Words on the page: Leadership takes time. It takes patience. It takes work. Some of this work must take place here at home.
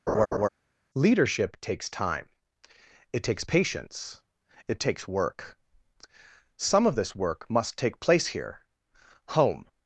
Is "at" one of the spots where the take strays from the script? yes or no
yes